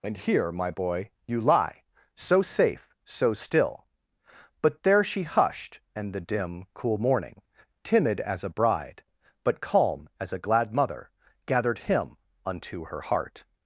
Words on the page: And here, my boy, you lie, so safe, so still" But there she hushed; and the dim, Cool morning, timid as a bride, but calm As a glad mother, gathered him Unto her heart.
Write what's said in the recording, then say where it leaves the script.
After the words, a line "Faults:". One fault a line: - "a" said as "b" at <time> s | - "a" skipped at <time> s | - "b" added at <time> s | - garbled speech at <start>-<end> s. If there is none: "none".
And here, my boy, you lie, so safe, so still" But there she hushed; and the dim, Cool morning, timid as a bride, but calm As a glad mother, gathered him Unto her heart.
Faults:
none